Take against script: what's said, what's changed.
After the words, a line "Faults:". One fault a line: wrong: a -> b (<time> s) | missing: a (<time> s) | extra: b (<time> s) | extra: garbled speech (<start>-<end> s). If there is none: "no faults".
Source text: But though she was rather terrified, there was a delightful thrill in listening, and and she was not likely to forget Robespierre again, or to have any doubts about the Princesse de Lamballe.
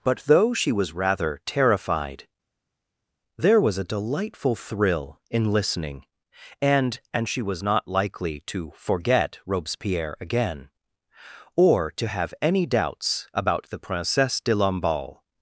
But though she was rather terrified, there was a delightful thrill in listening, and and she was not likely to forget Robespierre again, or to have any doubts about the Princesse de Lamballe.
Faults:
no faults